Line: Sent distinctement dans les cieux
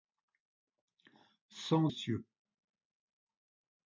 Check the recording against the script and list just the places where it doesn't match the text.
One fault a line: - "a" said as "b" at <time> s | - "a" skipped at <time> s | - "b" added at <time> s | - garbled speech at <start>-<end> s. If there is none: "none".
- "distinctement dans les" skipped at 1.9 s